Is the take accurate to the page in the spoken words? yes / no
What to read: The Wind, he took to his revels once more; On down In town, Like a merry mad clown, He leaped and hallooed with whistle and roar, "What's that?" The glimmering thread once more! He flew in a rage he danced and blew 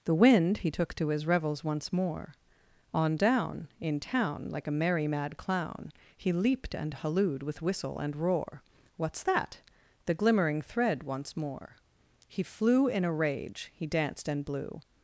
yes